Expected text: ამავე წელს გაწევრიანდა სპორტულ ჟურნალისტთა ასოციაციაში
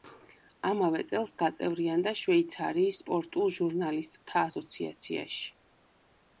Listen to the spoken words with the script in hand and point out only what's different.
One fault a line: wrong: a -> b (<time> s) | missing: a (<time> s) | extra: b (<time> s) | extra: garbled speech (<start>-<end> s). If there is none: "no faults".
extra: შვეიცარიის (2.2 s)